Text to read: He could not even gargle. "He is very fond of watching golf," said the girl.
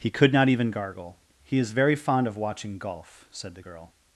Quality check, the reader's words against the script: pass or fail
pass